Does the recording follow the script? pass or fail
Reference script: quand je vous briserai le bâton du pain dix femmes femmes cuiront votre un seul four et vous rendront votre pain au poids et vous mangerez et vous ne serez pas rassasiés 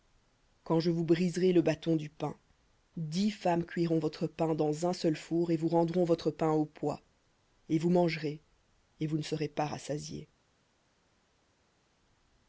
fail